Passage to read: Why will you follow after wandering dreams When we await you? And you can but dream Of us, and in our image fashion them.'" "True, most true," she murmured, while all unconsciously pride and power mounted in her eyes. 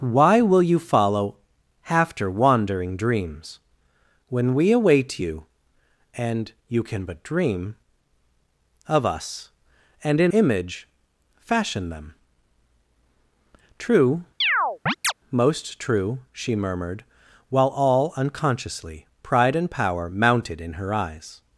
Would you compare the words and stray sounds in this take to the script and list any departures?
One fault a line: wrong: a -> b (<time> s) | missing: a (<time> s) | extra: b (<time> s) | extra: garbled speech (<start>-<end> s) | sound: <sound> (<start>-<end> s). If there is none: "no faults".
missing: our (10.3 s)
sound: chirp (14.4-15.1 s)